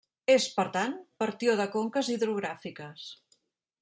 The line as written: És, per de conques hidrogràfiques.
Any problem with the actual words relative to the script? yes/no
yes